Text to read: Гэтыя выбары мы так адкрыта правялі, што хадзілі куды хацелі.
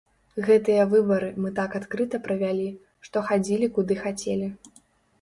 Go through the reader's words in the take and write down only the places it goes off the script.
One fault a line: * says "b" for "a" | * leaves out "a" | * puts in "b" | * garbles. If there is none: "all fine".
all fine